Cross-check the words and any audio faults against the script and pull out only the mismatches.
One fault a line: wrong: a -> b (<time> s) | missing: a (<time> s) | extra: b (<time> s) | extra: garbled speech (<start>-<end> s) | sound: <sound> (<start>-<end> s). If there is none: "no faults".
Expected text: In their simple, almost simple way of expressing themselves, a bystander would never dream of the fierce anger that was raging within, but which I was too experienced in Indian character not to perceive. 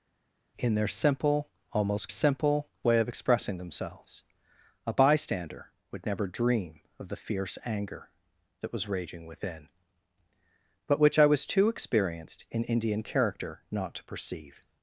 no faults